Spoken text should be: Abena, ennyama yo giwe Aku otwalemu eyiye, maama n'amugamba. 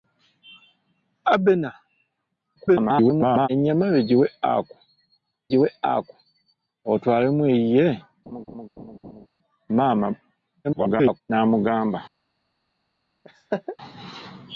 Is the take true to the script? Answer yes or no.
no